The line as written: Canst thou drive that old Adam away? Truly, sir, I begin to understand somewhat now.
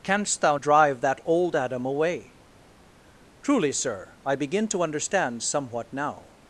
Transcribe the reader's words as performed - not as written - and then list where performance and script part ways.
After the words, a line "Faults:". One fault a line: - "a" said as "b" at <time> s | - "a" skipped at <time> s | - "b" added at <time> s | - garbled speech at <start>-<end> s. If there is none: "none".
Canst thou drive that old Adam away? Truly, sir, I begin to understand somewhat now.
Faults:
none